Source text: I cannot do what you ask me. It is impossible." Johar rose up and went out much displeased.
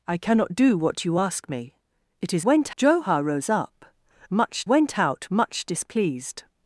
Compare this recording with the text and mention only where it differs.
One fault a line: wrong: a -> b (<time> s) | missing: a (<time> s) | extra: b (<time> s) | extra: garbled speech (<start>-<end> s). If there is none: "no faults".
wrong: impossible -> went (2.4 s)
wrong: and -> much (4.3 s)